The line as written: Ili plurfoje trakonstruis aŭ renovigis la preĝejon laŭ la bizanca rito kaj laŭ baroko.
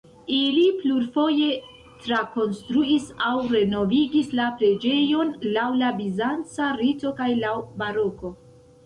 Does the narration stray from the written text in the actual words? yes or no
no